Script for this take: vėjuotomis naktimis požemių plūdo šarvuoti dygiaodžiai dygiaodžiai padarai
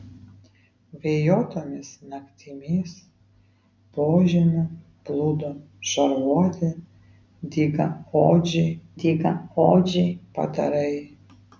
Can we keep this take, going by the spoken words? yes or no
yes